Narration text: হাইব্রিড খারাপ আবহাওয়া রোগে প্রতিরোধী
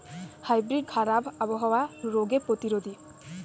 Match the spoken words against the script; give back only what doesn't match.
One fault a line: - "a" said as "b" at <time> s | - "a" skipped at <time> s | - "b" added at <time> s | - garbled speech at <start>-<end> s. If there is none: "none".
none